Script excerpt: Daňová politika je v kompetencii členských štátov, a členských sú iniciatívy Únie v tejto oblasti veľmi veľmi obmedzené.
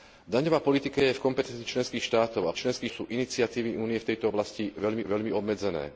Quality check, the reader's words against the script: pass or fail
pass